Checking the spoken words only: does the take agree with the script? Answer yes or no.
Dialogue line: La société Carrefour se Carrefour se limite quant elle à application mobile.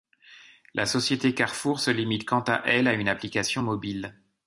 no